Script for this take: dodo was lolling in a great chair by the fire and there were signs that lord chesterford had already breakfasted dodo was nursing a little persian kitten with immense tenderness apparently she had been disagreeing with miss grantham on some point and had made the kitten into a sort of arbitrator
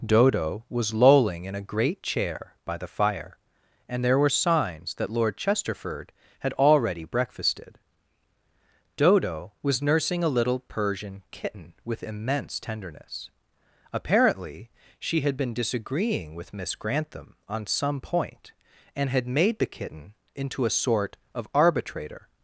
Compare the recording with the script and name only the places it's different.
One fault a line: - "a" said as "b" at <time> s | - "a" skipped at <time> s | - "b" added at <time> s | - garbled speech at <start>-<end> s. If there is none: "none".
none